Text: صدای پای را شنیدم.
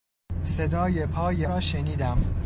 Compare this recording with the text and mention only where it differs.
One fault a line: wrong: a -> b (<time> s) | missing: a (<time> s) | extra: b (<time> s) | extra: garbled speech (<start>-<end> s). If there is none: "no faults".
no faults